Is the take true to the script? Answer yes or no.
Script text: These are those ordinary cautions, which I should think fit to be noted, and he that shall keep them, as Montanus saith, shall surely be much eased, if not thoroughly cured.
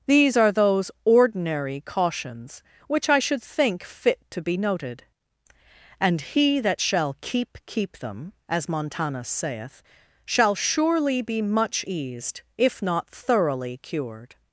no